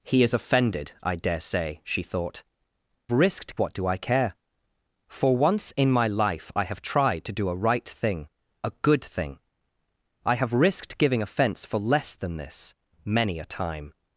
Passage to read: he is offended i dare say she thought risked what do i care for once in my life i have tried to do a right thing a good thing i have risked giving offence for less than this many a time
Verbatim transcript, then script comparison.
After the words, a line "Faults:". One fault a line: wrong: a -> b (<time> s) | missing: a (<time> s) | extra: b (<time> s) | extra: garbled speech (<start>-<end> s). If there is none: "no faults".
he is offended i dare say she thought risked what do i care for once in my life i have tried to do a right thing a good thing i have risked giving offence for less than this many a time
Faults:
no faults